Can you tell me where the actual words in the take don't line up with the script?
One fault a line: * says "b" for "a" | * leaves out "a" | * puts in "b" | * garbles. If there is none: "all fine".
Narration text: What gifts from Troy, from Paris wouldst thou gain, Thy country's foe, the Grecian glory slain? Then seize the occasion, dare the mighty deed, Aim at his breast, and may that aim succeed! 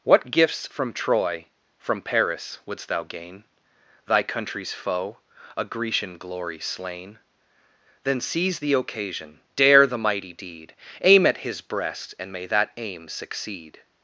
* says "a" for "the"